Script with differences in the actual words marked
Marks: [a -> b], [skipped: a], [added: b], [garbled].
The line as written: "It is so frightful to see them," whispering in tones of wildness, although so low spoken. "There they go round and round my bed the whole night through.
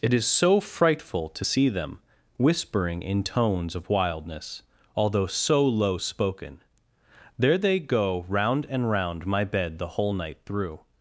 "It is so frightful to see them," whispering in tones of wildness, although so low spoken. "There they go round and round my bed the whole night through.